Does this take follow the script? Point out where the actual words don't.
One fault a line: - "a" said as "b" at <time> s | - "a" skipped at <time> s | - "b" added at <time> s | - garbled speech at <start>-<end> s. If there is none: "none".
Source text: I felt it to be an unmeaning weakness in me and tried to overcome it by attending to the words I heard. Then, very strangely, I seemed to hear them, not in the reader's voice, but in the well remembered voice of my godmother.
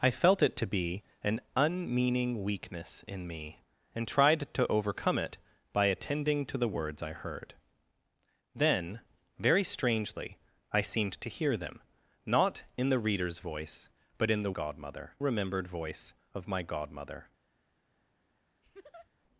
- "well" said as "godmother" at 14.5 s